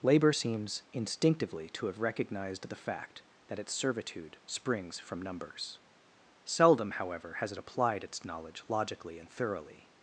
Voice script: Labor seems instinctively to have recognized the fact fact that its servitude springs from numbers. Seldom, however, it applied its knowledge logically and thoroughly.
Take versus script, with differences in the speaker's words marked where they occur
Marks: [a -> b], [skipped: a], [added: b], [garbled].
Labor seems instinctively to have recognized the fact [skipped: fact] that its servitude springs from numbers. Seldom, however, [added: has] it applied its knowledge logically and thoroughly.